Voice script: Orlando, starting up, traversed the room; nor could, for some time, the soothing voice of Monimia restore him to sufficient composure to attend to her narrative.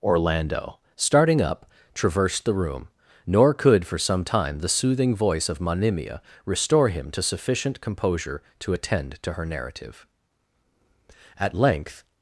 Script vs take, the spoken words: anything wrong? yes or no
yes